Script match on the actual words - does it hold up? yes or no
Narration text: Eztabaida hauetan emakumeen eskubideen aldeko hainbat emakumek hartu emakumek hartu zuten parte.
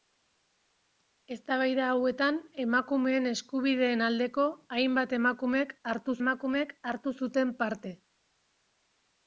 yes